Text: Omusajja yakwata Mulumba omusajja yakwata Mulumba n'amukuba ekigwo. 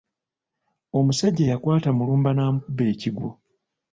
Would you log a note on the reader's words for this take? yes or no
yes